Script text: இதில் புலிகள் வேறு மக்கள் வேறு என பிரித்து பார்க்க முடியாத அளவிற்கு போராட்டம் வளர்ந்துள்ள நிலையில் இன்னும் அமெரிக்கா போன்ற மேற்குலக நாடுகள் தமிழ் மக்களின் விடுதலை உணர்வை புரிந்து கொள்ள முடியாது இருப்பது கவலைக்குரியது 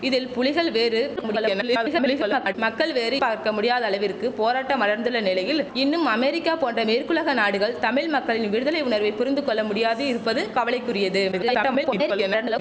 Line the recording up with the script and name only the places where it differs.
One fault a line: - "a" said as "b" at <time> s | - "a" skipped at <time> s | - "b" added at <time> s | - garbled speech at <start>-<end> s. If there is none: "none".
- garbled speech at 1.2-2.5 s
- "என பிரித்து" skipped at 3.2 s
- garbled speech at 11.3-12.6 s